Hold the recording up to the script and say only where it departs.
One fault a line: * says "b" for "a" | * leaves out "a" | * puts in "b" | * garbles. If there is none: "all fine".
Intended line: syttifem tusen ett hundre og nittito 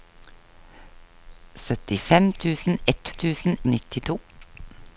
* says "tusen" for "hundre"